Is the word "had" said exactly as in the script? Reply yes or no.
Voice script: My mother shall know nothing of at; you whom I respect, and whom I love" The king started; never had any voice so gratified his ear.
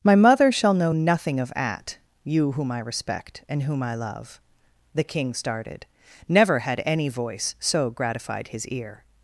yes